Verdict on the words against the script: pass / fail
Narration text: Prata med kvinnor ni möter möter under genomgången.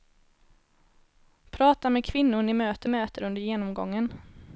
pass